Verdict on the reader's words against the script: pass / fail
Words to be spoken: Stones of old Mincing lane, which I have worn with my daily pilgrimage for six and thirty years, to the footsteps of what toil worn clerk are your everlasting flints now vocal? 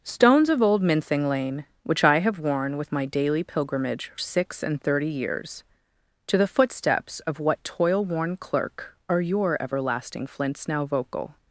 fail